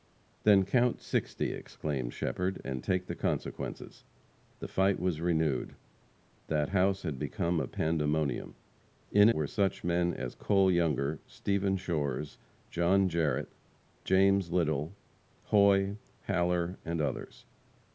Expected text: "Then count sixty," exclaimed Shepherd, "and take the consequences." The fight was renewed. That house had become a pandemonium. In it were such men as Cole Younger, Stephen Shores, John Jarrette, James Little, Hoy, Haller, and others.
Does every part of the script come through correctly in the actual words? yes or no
no